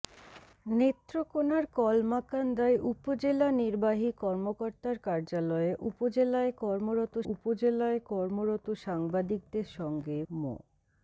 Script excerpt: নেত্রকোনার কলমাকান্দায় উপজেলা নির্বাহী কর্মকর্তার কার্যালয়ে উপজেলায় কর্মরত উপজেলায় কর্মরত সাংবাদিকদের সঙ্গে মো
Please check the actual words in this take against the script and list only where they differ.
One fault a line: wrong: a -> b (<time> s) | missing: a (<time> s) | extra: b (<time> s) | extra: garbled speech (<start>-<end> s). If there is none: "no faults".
no faults